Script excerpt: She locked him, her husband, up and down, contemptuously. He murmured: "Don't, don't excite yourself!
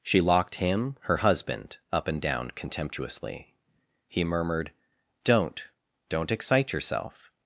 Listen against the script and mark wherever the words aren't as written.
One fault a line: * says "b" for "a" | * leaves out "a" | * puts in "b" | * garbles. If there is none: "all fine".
all fine